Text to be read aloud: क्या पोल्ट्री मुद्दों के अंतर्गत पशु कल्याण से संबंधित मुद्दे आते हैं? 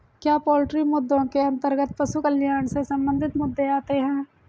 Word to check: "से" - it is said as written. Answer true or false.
true